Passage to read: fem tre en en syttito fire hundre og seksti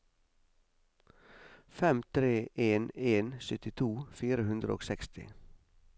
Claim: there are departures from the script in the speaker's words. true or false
false